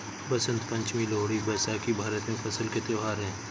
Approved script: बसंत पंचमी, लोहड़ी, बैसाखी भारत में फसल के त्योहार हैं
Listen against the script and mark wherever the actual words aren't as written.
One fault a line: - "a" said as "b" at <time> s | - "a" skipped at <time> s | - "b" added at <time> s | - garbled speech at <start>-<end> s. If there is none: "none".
none